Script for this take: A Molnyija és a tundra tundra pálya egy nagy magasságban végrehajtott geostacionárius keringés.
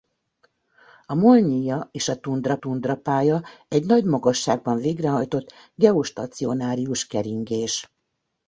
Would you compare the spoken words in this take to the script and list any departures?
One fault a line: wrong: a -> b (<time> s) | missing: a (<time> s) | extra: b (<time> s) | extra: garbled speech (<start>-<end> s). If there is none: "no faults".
no faults